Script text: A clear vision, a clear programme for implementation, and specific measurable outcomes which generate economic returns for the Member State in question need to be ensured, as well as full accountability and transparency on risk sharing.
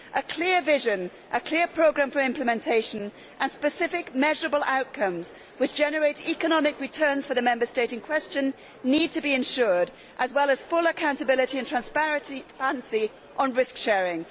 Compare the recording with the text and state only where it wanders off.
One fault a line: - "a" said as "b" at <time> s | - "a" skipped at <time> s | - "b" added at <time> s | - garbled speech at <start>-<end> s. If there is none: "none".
none